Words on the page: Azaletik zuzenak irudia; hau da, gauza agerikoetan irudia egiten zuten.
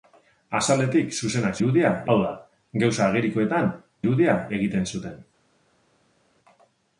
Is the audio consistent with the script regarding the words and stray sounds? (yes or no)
yes